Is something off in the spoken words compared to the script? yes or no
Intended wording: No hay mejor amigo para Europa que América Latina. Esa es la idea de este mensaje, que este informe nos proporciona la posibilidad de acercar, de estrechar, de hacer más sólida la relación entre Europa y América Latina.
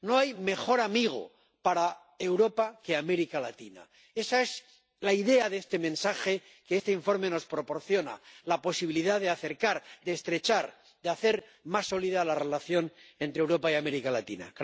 no